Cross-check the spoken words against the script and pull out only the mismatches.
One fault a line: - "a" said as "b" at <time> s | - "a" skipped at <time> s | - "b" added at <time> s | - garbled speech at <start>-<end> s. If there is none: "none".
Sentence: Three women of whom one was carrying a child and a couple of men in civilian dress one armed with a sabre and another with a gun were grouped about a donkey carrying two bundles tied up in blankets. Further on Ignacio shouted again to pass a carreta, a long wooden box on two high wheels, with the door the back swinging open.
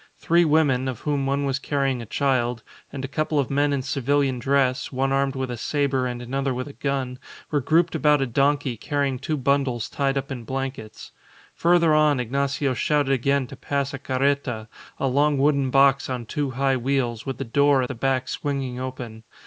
none